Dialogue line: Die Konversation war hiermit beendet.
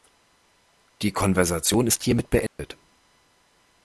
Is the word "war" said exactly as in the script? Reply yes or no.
no